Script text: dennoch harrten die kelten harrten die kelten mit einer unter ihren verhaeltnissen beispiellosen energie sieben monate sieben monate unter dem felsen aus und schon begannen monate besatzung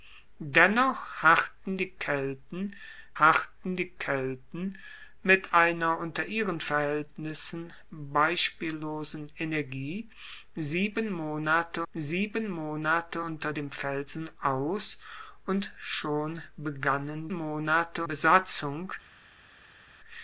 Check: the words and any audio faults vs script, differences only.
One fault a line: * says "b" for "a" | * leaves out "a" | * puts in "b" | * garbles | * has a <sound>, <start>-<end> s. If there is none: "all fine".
all fine